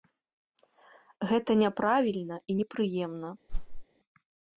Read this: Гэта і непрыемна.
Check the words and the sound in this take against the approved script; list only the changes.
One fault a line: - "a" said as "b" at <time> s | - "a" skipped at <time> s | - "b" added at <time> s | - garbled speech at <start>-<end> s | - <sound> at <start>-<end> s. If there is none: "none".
- "няправільна" added at 1.6 s
- whoosh at 3.5-3.9 s